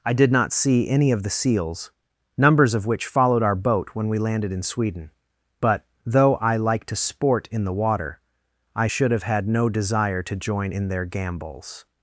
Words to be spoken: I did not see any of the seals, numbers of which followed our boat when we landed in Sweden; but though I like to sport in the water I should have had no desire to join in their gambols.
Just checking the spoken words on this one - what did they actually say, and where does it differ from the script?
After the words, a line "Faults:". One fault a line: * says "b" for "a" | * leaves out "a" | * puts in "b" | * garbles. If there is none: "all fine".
I did not see any of the seals, numbers of which followed our boat when we landed in Sweden; but though I like to sport in the water I should have had no desire to join in their gambols.
Faults:
all fine